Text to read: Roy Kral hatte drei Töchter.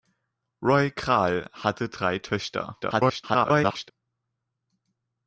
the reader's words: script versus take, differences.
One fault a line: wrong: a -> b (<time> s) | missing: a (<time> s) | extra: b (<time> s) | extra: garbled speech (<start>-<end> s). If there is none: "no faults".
extra: garbled speech (2.8-3.9 s)